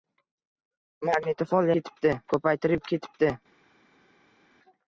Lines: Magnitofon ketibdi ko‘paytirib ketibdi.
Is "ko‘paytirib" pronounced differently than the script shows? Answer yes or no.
no